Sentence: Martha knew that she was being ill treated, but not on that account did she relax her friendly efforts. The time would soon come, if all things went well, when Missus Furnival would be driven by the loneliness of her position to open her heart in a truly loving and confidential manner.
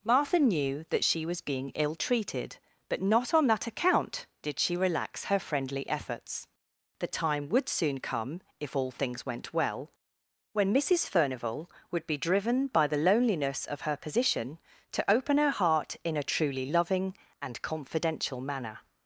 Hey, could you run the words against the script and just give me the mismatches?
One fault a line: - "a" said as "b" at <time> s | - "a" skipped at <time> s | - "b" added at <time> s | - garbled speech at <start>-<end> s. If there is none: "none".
none